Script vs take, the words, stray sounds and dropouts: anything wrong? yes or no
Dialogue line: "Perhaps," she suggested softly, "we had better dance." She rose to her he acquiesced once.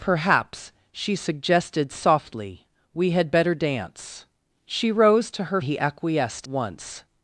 no